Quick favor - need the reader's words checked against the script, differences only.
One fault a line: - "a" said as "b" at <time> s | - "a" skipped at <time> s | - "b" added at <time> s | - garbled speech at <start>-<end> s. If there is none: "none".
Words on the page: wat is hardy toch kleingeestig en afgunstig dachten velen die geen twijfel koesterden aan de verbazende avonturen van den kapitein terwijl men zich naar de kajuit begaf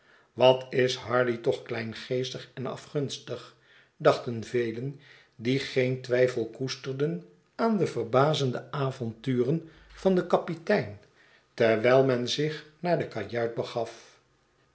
none